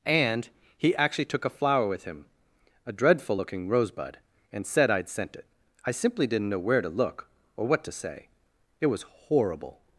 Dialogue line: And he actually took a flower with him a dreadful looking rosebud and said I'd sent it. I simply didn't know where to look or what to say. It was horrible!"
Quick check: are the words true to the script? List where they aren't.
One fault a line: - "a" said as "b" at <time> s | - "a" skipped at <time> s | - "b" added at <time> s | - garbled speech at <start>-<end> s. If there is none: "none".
none